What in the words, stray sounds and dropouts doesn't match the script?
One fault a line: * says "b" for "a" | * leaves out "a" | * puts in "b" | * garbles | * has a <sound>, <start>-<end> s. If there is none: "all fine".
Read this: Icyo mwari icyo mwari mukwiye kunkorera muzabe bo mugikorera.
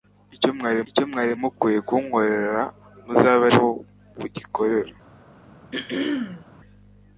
* has a throat clearing, 5.7-6.5 s